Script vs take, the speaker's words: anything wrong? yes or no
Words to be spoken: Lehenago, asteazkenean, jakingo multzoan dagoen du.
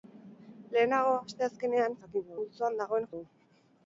no